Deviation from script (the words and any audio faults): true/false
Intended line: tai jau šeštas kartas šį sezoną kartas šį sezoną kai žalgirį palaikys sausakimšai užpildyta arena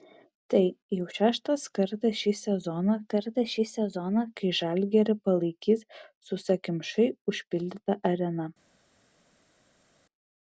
false